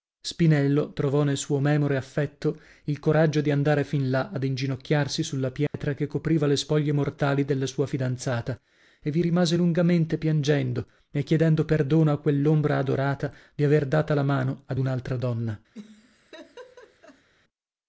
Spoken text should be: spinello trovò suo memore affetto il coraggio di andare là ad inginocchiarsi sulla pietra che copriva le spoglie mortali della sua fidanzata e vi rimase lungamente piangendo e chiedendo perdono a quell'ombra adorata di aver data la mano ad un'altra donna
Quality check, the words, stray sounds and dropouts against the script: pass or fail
fail